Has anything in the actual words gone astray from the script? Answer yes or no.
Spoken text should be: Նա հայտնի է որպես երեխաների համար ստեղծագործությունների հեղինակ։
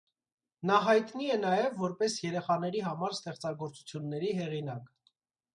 yes